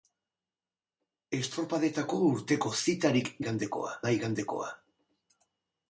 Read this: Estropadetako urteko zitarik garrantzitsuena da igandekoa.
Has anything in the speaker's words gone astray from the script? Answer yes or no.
yes